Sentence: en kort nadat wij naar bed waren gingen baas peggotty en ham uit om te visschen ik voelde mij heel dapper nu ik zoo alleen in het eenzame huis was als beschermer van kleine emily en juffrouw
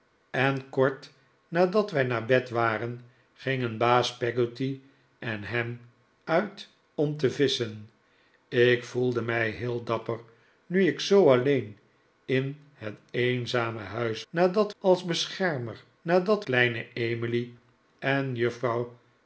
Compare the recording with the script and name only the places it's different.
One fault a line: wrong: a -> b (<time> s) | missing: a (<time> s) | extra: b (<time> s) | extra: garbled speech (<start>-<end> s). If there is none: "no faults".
wrong: was -> nadat (14.3 s)
wrong: van -> nadat (16.0 s)